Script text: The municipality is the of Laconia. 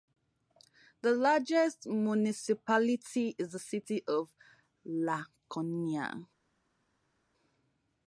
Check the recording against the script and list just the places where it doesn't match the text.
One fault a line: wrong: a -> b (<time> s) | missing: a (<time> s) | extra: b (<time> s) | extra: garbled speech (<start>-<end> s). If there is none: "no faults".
extra: largest (1.1 s)
extra: city (3.6 s)